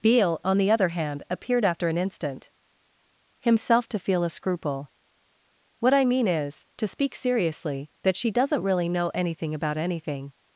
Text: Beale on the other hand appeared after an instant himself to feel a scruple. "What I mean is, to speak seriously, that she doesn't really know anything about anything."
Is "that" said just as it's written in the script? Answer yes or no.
yes